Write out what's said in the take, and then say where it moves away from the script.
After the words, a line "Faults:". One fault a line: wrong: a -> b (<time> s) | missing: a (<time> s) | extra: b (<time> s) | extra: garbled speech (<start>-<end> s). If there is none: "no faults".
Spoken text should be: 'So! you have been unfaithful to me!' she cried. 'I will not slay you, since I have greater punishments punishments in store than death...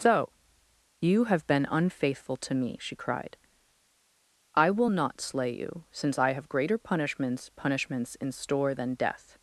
'So! you have been unfaithful to me!' she cried. 'I will not slay you, since I have greater punishments punishments in store than death...
Faults:
no faults